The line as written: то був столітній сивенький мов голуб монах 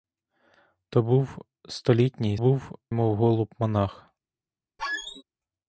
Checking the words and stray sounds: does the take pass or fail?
fail